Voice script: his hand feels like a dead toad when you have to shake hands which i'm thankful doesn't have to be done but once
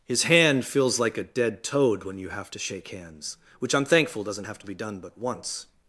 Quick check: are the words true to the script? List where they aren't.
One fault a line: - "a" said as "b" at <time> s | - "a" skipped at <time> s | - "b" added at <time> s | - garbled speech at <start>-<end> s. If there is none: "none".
none